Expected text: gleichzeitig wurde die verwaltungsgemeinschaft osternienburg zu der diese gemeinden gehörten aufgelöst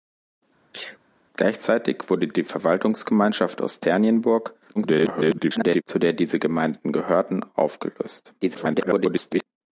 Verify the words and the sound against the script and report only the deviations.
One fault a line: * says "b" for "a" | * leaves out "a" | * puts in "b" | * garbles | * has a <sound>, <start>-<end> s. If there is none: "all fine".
* has a sneeze, 0.7-1.0 s
* garbles
* garbles